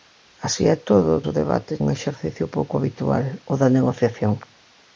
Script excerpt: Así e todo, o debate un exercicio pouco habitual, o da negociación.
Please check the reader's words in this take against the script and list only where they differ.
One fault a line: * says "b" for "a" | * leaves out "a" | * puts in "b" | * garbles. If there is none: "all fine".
all fine